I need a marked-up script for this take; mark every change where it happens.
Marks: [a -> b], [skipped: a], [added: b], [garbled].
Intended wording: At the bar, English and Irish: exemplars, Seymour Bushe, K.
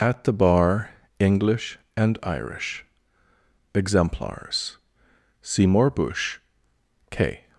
At the bar, English and Irish: exemplars, Seymour Bushe, K.